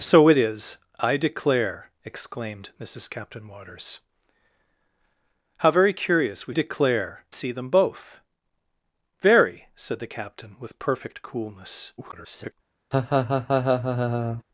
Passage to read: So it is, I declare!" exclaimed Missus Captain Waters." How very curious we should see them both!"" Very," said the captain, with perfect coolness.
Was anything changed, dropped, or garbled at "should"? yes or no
yes